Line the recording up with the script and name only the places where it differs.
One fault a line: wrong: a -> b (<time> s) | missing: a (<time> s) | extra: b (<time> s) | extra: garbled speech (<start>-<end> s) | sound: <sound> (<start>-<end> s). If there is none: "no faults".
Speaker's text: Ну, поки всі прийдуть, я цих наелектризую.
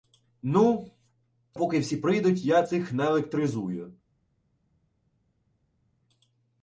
no faults